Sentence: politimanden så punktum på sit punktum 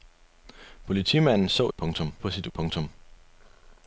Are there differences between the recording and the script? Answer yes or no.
no